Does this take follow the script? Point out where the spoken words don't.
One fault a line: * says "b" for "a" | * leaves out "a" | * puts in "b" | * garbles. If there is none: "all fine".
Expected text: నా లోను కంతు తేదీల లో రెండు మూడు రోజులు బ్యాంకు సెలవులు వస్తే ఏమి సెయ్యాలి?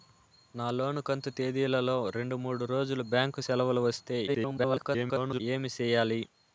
* garbles